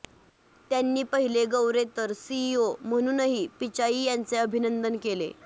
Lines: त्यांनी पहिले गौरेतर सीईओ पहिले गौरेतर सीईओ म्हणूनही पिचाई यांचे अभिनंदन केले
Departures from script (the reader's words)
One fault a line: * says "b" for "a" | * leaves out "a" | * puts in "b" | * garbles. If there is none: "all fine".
* leaves out "पहिले गौरेतर सीईओ"